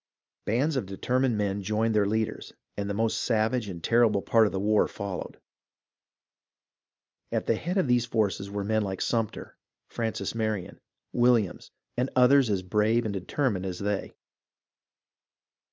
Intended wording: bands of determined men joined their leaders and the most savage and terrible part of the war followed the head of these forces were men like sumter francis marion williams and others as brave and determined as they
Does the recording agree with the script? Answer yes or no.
no